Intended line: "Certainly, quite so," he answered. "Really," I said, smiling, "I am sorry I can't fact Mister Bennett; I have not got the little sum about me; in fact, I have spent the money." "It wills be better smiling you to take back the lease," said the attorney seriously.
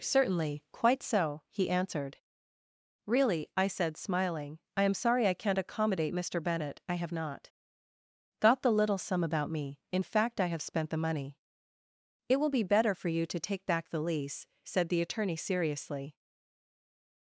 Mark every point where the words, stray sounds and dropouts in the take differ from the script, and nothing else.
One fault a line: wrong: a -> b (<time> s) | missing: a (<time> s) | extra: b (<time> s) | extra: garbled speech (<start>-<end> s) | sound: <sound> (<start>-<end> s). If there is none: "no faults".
wrong: fact -> accommodate (5.6 s)
wrong: wills -> will (12.4 s)
wrong: smiling -> for (12.9 s)